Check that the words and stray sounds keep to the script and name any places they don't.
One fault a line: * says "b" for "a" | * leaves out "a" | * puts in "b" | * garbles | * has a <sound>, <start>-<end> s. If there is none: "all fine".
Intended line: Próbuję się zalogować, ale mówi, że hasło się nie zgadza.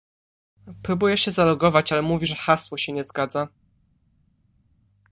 all fine